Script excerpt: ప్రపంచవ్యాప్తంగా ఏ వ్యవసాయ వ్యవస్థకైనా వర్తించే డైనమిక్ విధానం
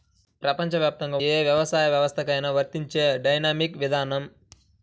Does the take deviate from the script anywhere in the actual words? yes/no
no